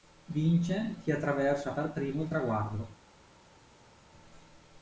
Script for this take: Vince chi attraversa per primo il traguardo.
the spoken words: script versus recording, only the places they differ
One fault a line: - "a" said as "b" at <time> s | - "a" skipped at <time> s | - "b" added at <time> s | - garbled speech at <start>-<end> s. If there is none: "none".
none